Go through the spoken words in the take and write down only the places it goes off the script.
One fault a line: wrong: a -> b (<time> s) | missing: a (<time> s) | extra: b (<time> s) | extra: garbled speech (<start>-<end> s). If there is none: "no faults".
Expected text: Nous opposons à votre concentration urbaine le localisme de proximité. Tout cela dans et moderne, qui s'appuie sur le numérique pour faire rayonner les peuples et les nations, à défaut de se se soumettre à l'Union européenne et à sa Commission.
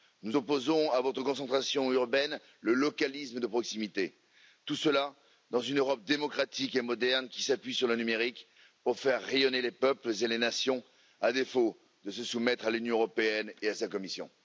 extra: une Europe démocratique (5.6 s)
missing: se (12.2 s)